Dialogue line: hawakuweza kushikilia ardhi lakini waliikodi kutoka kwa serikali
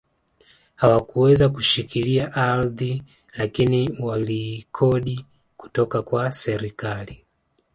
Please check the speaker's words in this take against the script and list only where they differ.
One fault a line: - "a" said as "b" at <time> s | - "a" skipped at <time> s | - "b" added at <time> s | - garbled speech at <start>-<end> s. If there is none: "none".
none